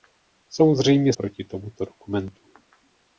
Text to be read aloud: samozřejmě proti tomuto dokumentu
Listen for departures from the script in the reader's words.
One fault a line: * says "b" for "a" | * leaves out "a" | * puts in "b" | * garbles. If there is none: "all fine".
all fine